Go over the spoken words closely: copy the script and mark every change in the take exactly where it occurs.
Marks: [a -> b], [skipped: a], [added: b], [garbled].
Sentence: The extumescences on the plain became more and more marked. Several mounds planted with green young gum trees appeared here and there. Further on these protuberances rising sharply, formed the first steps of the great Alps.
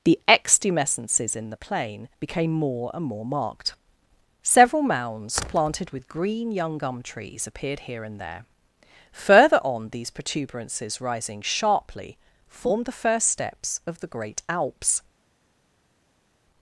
The extumescences [on -> in] the plain became more and more marked. Several mounds planted with green young gum trees appeared here and there. Further on these protuberances rising sharply, formed the first steps of the great Alps.